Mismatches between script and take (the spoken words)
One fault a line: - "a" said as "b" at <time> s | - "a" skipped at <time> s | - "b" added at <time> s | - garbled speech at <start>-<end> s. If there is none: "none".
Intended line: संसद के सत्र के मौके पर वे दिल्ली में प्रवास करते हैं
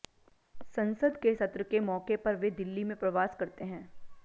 none